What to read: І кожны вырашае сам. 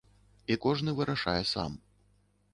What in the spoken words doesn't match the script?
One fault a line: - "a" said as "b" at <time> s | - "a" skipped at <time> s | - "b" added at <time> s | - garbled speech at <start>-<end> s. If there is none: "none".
none